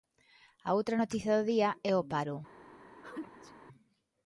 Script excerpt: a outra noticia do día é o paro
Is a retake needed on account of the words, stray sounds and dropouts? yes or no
yes